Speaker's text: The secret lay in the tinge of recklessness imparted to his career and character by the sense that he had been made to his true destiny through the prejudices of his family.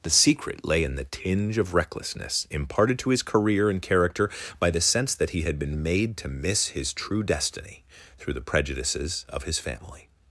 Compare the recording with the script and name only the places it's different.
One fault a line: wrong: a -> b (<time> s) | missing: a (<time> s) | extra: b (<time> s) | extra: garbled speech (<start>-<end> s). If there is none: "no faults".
extra: miss (6.3 s)